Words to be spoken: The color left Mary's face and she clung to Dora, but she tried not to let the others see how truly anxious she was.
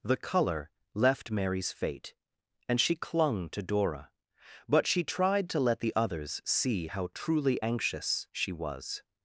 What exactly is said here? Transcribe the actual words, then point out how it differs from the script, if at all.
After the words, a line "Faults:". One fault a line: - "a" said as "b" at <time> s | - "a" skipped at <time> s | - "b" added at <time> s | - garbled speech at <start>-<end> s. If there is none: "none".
The color left Mary's fate and she clung to Dora, but she tried to let the others see how truly anxious she was.
Faults:
- "face" said as "fate" at 1.7 s
- "not" skipped at 5.5 s